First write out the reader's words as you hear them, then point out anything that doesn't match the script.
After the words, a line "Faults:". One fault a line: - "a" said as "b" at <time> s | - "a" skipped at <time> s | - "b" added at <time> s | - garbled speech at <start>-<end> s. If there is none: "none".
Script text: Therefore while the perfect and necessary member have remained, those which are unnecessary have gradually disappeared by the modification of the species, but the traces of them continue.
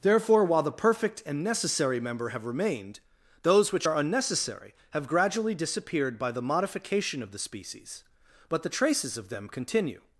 Therefore while the perfect and necessary member have remained, those which are unnecessary have gradually disappeared by the modification of the species, but the traces of them continue.
Faults:
none